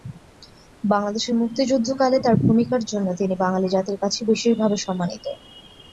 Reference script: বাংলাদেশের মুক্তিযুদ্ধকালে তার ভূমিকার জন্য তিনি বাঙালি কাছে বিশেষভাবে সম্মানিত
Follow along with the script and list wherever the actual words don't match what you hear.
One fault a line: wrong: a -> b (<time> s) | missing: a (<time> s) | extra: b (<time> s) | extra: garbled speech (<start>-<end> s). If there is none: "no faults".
extra: জাতির (3.7 s)